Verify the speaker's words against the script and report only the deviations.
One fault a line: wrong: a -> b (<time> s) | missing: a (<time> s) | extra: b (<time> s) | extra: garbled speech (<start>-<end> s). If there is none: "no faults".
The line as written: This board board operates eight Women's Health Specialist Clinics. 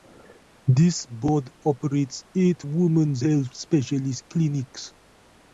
missing: board (1.5 s)